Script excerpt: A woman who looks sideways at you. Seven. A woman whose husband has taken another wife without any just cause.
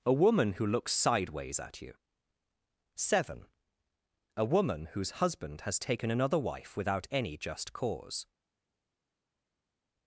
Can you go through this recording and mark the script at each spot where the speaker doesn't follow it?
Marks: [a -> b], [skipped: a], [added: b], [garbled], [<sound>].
A woman who looks sideways at you. Seven. A woman whose husband has taken another wife without any just cause.